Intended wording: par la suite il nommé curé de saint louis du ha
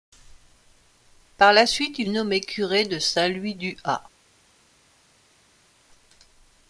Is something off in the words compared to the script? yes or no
no